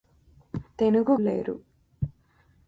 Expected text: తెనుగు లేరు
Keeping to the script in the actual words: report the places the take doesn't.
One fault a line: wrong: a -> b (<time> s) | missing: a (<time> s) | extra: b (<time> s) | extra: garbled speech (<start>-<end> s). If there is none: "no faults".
no faults